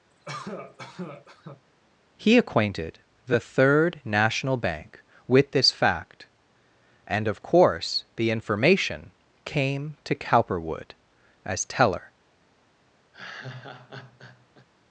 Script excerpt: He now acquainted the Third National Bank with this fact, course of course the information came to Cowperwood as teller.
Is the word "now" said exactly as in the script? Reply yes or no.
no